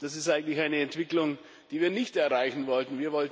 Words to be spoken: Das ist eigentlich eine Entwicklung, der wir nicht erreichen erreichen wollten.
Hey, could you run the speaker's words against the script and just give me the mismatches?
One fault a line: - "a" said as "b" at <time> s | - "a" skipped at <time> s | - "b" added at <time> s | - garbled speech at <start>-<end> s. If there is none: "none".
- "der" said as "die" at 1.7 s
- "erreichen" skipped at 2.6 s